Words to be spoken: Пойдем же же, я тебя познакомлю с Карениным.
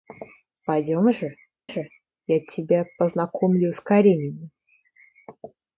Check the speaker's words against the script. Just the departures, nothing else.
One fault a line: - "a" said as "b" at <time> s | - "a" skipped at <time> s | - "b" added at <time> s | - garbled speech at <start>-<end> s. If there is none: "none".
none